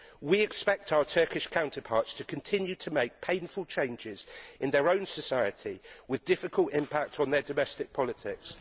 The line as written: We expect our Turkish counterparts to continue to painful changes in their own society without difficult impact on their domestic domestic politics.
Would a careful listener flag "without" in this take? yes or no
yes